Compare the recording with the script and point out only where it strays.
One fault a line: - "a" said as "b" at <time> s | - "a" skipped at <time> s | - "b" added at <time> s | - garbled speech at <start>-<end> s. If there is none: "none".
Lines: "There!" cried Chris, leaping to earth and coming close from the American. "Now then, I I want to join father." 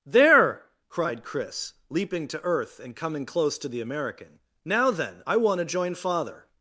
- "from" said as "to" at 3.6 s
- "I" skipped at 5.4 s